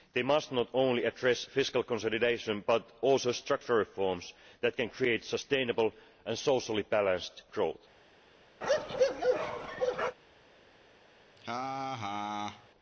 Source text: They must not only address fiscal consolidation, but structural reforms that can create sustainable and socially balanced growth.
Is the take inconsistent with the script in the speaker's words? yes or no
yes